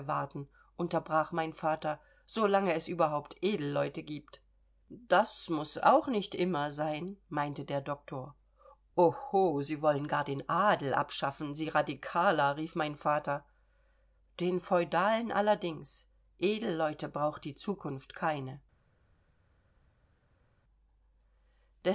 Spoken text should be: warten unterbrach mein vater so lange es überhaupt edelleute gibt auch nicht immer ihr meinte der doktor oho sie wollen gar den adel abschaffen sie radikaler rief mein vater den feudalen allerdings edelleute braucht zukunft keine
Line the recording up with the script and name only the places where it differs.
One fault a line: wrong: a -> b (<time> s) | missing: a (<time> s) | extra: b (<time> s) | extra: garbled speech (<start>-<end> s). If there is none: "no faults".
extra: das muß (4.9 s)
wrong: ihr -> sein (6.7 s)
extra: die (17.4 s)